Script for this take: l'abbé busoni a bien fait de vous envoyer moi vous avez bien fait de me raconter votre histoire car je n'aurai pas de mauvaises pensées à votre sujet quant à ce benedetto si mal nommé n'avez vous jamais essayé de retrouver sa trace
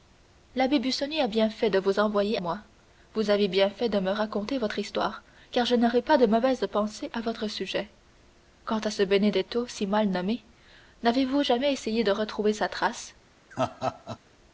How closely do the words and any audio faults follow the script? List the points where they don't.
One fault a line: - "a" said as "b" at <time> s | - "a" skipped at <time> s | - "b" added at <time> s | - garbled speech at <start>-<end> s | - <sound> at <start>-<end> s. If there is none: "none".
- laugh at 13.5-14.2 s